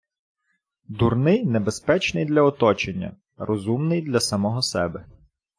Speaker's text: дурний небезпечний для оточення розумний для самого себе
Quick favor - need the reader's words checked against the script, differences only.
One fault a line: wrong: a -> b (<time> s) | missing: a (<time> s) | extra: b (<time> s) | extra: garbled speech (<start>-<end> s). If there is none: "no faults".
no faults